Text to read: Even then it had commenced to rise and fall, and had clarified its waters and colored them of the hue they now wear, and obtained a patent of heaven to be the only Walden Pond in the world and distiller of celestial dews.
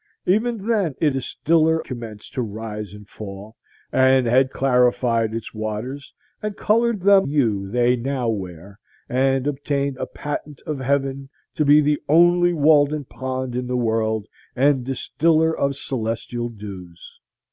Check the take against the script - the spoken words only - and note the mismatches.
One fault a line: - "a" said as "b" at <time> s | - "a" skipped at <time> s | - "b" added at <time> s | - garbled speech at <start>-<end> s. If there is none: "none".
- "had" said as "distiller" at 1.1 s
- "of the" skipped at 7.3 s